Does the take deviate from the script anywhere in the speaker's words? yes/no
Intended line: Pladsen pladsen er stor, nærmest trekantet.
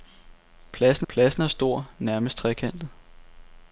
no